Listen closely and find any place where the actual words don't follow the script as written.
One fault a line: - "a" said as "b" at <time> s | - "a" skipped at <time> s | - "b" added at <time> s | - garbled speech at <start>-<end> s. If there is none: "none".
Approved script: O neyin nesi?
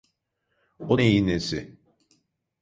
none